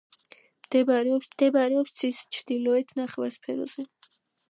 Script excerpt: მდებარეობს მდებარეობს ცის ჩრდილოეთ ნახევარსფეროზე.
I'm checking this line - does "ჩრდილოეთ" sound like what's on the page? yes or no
yes